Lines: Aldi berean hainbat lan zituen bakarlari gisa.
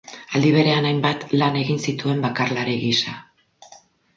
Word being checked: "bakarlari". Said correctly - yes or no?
yes